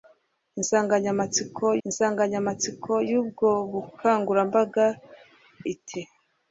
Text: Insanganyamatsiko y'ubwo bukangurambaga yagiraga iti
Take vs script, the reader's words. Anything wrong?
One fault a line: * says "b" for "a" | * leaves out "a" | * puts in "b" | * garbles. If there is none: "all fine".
* puts in "insanganyamatsiko"
* leaves out "yagiraga"